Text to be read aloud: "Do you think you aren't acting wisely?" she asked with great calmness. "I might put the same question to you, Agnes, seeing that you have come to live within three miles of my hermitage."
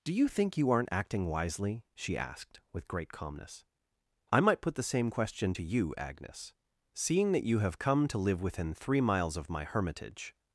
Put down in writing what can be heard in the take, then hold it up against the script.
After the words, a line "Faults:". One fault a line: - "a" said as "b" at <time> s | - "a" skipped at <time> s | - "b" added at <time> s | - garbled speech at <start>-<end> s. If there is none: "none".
"Do you think you aren't acting wisely?" she asked with great calmness. "I might put the same question to you, Agnes, seeing that you have come to live within three miles of my hermitage."
Faults:
none